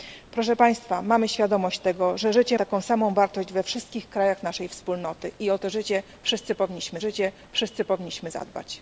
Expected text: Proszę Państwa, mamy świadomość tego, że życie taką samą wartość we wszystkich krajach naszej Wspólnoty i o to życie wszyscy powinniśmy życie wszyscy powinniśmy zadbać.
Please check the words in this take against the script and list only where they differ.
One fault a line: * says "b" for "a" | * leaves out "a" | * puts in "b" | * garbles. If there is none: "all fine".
all fine